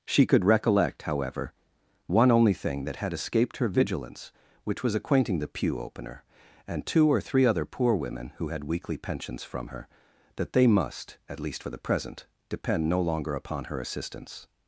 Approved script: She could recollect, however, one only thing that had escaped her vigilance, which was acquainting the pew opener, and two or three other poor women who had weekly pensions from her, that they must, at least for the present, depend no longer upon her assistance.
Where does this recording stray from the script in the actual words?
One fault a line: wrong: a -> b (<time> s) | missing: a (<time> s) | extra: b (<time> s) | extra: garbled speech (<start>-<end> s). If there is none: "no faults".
no faults